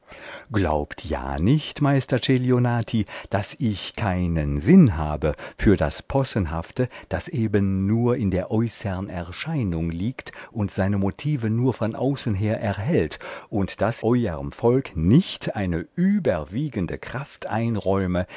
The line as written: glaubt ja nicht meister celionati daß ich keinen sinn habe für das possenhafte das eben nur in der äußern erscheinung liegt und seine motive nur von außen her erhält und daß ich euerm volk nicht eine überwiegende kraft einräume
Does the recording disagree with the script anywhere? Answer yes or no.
yes